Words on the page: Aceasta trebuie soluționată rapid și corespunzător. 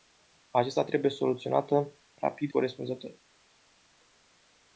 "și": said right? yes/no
no